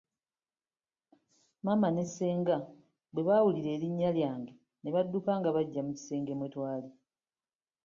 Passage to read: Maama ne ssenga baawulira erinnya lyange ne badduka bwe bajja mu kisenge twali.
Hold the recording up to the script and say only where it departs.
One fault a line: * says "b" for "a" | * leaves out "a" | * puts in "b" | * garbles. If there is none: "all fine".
* puts in "bwe"
* says "nga" for "bwe"
* puts in "mwe"